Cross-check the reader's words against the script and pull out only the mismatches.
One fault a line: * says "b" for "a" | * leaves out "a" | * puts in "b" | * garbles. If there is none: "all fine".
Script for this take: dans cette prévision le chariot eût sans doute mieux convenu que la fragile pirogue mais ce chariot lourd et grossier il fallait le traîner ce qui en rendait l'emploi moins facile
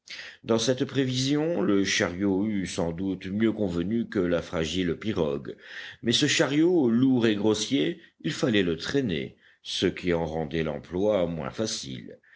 all fine